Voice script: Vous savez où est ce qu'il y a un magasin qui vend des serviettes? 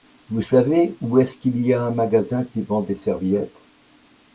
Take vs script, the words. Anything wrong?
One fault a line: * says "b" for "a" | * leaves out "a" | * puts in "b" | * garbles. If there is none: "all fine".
all fine